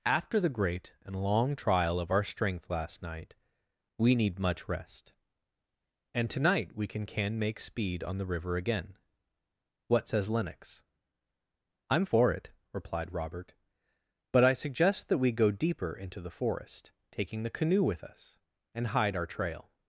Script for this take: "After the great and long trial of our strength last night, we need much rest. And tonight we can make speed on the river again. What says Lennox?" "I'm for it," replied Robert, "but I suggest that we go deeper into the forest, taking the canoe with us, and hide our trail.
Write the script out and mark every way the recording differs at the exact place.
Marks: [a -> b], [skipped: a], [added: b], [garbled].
"After the great and long trial of our strength last night, we need much rest. And tonight we can [added: can] make speed on the river again. What says Lennox?" "I'm for it," replied Robert, "but I suggest that we go deeper into the forest, taking the canoe with us, and hide our trail.